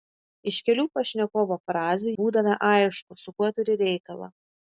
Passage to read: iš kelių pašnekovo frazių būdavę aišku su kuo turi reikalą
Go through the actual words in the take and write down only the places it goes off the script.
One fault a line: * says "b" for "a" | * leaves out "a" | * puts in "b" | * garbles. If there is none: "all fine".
all fine